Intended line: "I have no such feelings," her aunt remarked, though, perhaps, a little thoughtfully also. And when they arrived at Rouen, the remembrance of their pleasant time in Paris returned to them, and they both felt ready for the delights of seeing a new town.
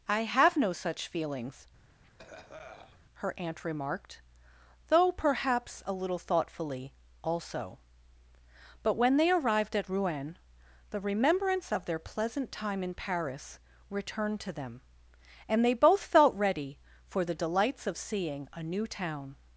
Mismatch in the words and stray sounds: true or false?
true